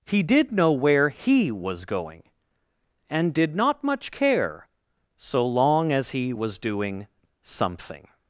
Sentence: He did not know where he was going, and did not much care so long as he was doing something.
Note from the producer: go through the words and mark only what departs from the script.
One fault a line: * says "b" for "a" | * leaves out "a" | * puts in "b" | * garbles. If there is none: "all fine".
* leaves out "not"